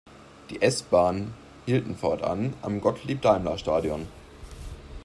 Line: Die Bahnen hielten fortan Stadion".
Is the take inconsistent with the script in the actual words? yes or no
yes